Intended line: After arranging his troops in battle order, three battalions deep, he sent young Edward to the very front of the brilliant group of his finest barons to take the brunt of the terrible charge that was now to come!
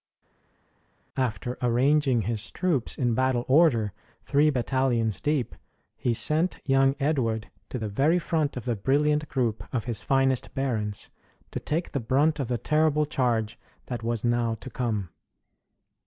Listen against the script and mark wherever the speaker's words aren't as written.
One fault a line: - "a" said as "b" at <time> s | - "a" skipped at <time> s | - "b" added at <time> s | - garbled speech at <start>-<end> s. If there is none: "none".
none